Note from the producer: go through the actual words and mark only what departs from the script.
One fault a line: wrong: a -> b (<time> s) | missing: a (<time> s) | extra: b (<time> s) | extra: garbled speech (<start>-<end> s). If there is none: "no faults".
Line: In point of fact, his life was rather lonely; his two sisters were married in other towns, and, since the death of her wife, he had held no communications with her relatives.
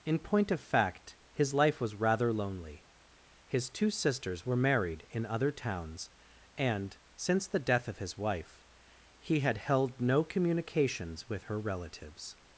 wrong: her -> his (8.0 s)